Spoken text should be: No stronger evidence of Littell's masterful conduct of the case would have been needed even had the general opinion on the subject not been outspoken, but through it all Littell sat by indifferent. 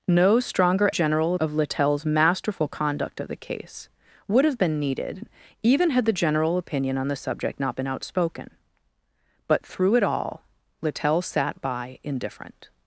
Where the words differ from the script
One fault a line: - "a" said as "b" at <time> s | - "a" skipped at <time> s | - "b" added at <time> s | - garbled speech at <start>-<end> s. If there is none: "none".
- "evidence" said as "general" at 0.9 s